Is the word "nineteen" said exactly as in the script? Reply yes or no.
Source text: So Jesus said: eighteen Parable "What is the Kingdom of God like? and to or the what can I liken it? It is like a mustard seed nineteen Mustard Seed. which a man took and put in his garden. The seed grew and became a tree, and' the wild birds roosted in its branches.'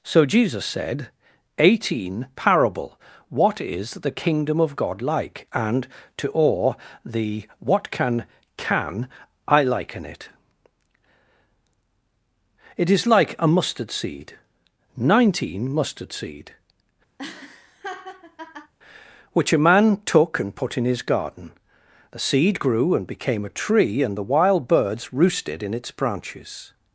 yes